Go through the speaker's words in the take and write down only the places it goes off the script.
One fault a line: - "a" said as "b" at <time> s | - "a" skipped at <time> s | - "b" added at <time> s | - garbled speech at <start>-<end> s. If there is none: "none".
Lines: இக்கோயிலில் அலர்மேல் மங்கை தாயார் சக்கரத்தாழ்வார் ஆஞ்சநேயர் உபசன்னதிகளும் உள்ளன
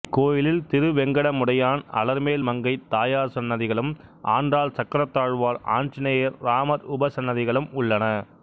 - "திருவெங்கடமுடையான்" added at 0.7 s
- "சன்னதிகளும் ஆண்டாள்" added at 3.3 s
- "ராமர்" added at 6.4 s